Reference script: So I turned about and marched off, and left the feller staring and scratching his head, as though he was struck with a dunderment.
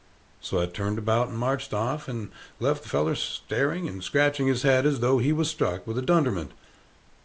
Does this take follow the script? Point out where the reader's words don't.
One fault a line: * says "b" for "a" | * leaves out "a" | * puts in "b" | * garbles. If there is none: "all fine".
all fine